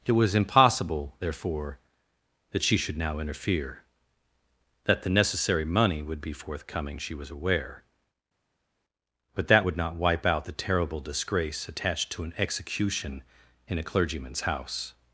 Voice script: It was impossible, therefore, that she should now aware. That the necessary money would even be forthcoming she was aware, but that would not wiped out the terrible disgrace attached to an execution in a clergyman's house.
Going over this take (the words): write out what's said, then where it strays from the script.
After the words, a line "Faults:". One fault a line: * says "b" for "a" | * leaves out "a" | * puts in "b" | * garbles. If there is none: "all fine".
It was impossible, therefore, that she should now interfere. That the necessary money would be forthcoming she was aware, but that would not wipe out the terrible disgrace attached to an execution in a clergyman's house.
Faults:
* says "interfere" for "aware"
* leaves out "even"
* says "wipe" for "wiped"